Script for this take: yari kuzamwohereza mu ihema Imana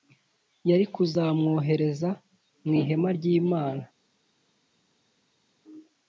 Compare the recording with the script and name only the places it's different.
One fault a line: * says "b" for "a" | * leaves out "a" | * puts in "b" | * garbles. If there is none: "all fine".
* puts in "ry"